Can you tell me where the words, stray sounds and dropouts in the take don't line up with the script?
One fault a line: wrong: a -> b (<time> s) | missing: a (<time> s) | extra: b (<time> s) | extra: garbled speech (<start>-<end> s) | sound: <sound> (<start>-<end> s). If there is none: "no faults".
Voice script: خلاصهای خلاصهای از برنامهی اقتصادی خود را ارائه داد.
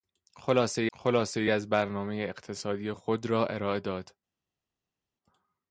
no faults